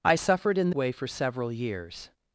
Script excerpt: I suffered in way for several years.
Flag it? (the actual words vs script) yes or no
no